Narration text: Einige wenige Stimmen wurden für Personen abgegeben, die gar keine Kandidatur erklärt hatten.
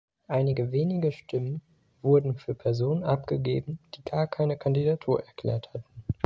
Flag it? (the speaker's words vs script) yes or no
no